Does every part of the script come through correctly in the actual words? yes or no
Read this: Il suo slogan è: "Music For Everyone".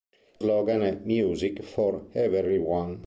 no